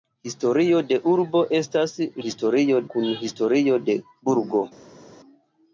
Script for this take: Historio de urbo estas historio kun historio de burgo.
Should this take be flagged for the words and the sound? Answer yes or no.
no